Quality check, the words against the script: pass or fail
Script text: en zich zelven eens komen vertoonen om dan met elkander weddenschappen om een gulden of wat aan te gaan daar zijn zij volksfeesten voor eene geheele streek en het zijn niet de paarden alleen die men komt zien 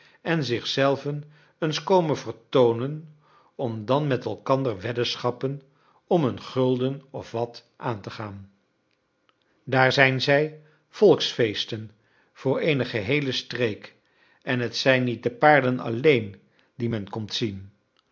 pass